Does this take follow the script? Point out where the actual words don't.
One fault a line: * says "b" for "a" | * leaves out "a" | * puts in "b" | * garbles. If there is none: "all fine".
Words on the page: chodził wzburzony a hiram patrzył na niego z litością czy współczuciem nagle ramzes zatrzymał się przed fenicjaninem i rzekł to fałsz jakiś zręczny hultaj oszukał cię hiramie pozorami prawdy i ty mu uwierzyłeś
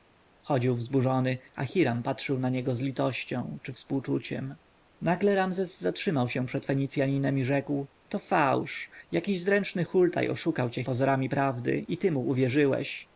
* leaves out "hiramie"